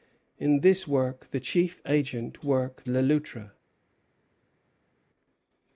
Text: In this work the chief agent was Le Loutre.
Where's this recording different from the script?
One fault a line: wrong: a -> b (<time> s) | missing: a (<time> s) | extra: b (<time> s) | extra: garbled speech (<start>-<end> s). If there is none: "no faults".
wrong: was -> work (2.4 s)